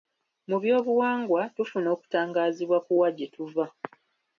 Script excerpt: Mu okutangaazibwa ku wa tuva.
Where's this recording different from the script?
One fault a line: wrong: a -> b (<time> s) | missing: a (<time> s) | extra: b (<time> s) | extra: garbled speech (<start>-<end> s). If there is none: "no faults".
extra: byobuwangwa tufuna (0.6 s)
extra: gye (3.2 s)